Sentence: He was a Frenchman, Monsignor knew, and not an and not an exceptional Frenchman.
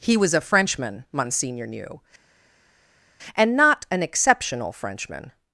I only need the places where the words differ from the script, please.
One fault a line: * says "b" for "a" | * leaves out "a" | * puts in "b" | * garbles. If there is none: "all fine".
* leaves out "and not an"